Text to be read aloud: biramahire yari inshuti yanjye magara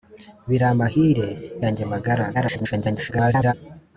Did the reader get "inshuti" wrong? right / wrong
wrong